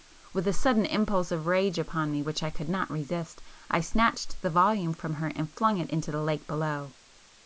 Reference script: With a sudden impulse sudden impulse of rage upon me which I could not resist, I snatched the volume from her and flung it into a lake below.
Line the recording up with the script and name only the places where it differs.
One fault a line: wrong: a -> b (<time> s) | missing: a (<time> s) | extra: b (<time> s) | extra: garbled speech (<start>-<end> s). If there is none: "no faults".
missing: sudden impulse (1.3 s)
wrong: a -> the (6.1 s)